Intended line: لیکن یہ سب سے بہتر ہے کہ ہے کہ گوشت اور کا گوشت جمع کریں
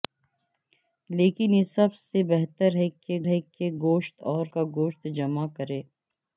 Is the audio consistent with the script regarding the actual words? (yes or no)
yes